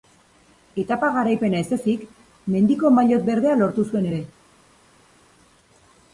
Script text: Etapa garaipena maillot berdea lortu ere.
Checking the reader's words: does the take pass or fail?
fail